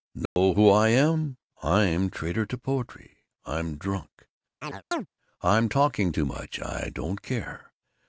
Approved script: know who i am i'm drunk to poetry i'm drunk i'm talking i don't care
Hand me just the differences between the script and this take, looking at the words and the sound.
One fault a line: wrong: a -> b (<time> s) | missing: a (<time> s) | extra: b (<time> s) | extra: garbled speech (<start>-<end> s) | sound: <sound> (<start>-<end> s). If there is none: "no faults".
sound: dropout (0.3-0.4 s)
wrong: drunk -> traitor (2.1 s)
sound: chirp (4.6-5.1 s)
extra: too much (6.1 s)